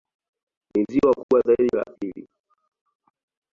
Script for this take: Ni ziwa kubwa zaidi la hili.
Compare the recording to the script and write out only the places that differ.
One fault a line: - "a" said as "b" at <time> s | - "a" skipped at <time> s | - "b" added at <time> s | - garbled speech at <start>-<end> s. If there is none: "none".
none